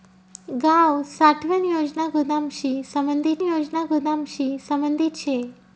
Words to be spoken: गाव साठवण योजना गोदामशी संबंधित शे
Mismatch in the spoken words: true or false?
true